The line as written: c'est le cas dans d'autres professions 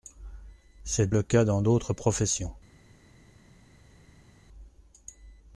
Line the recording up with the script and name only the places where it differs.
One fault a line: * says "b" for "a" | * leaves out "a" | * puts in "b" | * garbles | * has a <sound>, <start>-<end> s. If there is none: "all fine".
all fine